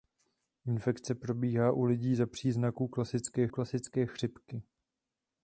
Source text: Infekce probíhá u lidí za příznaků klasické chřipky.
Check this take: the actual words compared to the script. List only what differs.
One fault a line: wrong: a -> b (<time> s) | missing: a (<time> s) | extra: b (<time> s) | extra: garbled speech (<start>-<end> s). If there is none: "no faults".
extra: klasické (3.5 s)